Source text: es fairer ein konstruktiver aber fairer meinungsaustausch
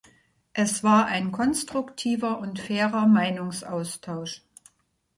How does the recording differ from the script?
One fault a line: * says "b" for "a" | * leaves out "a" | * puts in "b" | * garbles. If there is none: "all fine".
* says "war" for "fairer"
* says "und" for "aber"